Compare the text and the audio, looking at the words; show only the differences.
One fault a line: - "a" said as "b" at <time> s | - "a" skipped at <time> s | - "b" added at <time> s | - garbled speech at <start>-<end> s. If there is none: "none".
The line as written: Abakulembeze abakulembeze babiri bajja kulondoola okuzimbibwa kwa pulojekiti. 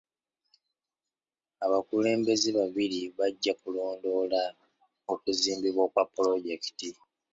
- "abakulembeze" skipped at 2.5 s